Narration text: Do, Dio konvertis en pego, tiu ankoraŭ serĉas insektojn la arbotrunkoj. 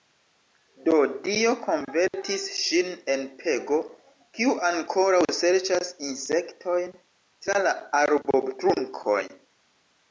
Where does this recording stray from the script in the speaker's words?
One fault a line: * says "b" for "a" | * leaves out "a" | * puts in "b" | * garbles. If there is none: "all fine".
* puts in "ŝin"
* says "kiu" for "tiu"
* puts in "tra"